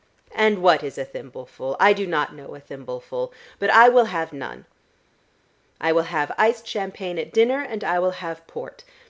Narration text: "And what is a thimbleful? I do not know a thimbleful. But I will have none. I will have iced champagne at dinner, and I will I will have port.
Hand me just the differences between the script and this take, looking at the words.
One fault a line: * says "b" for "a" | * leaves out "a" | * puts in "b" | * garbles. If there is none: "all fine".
* leaves out "I will"